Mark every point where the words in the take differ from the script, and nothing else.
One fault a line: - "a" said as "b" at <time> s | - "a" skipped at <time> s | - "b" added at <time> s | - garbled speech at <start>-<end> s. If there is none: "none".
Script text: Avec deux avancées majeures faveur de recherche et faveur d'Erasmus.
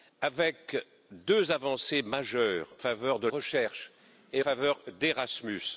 none